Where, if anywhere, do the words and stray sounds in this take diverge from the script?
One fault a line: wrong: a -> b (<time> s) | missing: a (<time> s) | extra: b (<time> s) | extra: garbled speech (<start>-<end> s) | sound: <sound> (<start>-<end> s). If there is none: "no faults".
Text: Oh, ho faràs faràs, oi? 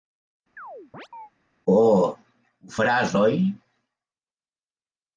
sound: chirp (0.6-1.3 s)
missing: faràs (3.1 s)